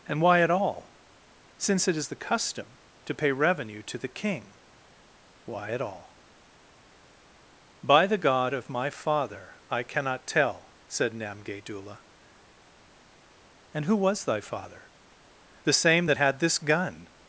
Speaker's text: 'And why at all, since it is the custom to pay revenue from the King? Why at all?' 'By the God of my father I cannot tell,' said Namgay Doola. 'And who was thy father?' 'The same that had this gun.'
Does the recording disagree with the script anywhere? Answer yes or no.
yes